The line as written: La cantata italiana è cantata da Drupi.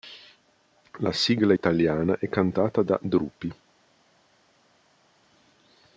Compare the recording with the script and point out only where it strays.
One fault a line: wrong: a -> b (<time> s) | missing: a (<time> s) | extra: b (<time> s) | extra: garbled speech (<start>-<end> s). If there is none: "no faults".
wrong: cantata -> sigla (1.1 s)